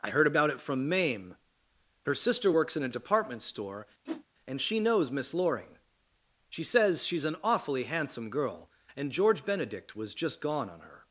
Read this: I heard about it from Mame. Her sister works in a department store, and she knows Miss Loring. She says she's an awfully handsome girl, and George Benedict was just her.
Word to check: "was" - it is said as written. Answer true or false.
true